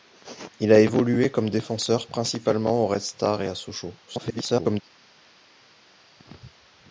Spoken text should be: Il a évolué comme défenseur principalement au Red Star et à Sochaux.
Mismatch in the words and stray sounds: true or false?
true